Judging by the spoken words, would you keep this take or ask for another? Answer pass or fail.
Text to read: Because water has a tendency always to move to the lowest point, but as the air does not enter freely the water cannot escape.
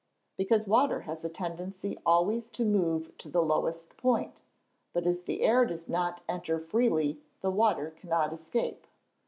pass